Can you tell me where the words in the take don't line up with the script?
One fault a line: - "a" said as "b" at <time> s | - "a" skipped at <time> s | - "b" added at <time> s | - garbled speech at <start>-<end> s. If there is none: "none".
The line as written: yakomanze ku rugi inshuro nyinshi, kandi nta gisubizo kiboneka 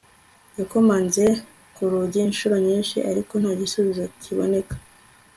- "kandi" said as "ariko" at 3.1 s